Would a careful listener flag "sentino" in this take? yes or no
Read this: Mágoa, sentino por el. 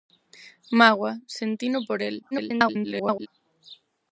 no